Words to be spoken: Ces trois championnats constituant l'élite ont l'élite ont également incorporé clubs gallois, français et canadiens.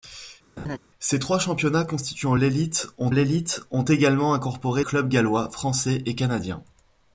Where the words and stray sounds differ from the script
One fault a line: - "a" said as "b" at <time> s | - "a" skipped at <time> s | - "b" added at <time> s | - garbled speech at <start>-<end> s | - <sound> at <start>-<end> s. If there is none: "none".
- laugh at 0.6-0.8 s